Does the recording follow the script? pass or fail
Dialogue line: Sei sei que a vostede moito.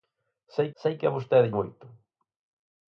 pass